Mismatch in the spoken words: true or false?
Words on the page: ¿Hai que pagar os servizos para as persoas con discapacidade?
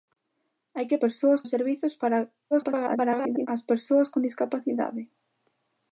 true